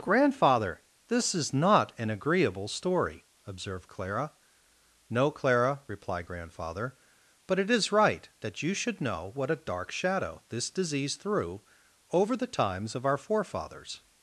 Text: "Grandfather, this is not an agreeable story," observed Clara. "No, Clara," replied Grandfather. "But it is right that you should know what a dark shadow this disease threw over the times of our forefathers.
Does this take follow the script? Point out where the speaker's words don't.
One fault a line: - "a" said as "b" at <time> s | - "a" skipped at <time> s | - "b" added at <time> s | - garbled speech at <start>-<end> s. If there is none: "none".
none